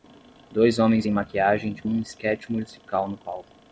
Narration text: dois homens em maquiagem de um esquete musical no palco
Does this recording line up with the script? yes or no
yes